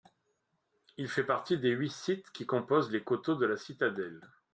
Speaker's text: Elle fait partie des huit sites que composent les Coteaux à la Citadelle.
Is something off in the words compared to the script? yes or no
yes